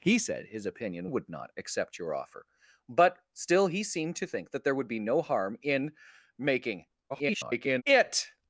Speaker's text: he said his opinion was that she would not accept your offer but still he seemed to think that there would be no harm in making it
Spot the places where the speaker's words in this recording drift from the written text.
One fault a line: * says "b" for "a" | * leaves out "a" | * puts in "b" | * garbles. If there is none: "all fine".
* leaves out "was that she"
* garbles